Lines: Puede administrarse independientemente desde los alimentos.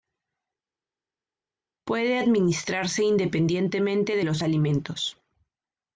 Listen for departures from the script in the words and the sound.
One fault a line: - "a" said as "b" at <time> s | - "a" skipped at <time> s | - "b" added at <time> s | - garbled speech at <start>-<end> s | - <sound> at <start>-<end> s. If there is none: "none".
- "desde" said as "de" at 4.1 s